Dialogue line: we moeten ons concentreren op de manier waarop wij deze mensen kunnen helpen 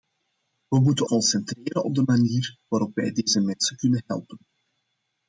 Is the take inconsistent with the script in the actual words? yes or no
yes